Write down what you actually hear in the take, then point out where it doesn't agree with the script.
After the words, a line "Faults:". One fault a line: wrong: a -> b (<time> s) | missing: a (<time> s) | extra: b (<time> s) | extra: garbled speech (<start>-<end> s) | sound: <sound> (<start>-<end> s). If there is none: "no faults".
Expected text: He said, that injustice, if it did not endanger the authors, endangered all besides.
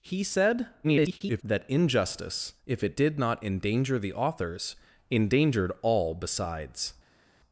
He said, [garbled] that injustice, if it did not endanger the authors, endangered all besides.
Faults:
extra: garbled speech (0.8-1.4 s)